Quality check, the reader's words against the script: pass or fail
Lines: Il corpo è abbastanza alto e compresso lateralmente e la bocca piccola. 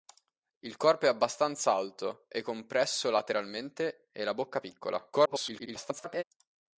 fail